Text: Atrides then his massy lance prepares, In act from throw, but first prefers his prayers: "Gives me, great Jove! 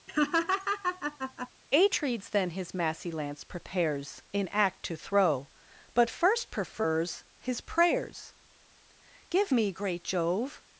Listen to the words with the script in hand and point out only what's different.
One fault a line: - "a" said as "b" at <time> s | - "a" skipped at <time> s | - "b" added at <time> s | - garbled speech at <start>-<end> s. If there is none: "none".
- "from" said as "to" at 4.8 s
- "Gives" said as "Give" at 9.3 s